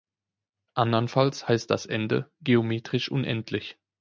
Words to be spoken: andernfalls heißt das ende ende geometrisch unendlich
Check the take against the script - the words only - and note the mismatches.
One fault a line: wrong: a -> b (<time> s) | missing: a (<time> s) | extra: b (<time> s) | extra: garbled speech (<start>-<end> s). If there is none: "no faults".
missing: ende (2.3 s)